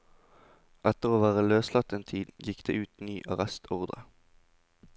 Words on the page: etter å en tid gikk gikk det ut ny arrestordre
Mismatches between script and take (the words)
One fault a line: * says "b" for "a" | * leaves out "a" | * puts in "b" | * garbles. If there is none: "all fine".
* puts in "være løslatt"
* leaves out "gikk"